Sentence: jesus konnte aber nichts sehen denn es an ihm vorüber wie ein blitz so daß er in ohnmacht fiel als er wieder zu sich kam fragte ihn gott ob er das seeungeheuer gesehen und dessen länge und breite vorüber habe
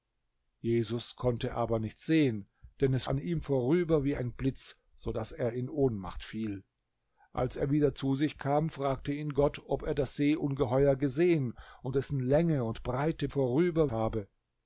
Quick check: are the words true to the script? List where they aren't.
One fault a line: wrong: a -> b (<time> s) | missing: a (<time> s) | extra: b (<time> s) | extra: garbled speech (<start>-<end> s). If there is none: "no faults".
no faults